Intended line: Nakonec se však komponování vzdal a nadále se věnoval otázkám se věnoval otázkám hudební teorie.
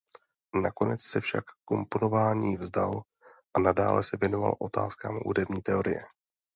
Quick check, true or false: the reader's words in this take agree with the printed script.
false